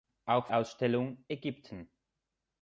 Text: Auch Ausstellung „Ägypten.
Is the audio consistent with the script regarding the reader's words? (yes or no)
yes